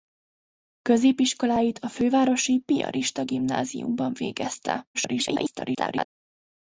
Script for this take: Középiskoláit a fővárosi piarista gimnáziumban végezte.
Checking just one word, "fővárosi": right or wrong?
right